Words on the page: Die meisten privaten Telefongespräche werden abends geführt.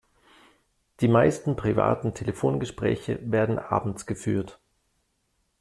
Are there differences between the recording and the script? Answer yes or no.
no